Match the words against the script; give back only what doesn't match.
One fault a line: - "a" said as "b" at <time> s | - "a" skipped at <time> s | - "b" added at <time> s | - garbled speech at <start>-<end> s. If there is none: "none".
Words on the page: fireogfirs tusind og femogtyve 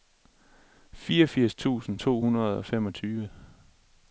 - "to hundrede" added at 2.0 s